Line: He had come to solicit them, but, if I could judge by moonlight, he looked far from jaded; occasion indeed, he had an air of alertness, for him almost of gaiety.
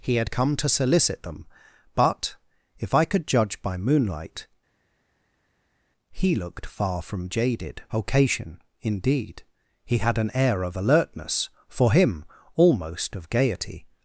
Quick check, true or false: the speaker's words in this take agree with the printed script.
true